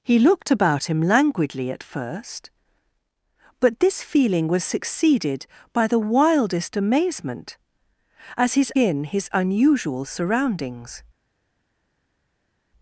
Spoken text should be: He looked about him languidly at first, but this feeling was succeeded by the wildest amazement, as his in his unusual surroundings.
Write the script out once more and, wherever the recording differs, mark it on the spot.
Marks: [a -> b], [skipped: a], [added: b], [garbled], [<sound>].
He looked about him languidly at first, but this feeling was succeeded by the wildest amazement, as his in his unusual surroundings.